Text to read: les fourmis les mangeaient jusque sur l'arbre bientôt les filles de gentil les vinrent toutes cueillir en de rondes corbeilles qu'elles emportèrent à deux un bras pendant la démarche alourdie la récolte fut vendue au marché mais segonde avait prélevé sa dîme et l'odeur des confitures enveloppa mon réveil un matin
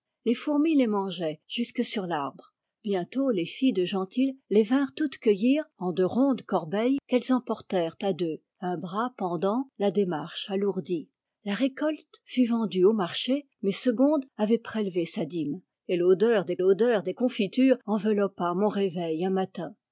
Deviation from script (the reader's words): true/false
true